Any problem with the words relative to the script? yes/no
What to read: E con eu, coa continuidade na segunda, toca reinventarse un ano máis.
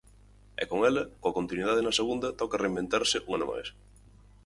yes